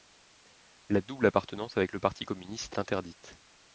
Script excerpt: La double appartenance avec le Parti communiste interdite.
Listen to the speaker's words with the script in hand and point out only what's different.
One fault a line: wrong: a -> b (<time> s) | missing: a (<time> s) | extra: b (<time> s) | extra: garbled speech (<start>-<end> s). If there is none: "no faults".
no faults